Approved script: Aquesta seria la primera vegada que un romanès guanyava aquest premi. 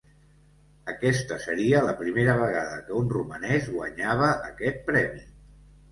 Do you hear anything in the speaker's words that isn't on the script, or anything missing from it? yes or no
no